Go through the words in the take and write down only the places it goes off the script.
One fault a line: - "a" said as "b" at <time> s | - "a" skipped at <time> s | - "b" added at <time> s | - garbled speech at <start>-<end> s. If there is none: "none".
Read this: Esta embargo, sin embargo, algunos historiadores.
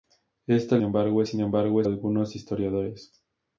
none